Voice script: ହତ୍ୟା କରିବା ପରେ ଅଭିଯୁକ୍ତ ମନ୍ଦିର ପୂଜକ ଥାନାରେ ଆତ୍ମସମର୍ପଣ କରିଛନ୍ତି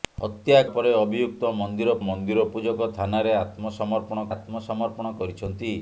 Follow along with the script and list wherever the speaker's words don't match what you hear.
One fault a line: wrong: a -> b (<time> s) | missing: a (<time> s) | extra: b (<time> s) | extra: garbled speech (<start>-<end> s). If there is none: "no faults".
missing: କରିବା (0.6 s)
extra: ମନ୍ଦିର (2.0 s)
extra: ଆତ୍ମସମର୍ପଣ (4.3 s)